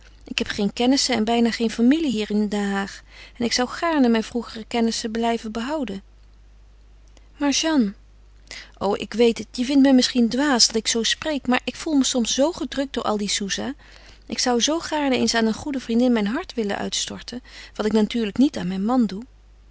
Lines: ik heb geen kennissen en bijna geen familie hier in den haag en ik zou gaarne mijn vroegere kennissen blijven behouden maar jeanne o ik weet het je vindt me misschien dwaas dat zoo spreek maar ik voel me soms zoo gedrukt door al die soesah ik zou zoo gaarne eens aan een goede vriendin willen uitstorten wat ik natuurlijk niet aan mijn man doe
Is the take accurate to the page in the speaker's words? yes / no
no